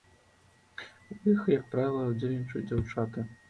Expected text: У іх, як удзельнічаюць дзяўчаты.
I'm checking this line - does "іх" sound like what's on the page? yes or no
yes